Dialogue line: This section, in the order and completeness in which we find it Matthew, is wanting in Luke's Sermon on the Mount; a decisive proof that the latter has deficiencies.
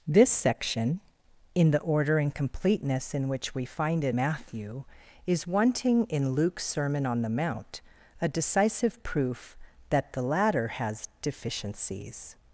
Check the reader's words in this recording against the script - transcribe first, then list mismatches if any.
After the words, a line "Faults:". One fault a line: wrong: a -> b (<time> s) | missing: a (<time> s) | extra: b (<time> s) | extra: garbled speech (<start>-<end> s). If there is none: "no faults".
This section, in the order and completeness in which we find it Matthew, is wanting in Luke's Sermon on the Mount; a decisive proof that the latter has deficiencies.
Faults:
no faults